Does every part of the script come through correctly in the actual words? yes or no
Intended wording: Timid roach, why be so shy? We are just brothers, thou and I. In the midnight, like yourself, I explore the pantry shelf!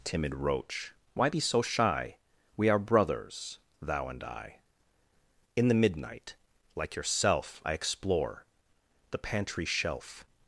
no